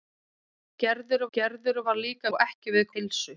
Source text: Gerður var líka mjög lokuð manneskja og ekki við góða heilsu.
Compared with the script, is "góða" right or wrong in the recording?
wrong